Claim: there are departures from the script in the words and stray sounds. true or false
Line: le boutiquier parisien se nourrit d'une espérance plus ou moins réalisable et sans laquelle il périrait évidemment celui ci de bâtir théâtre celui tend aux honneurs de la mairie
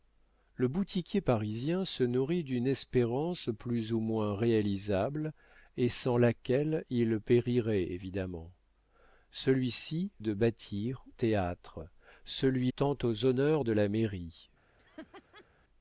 true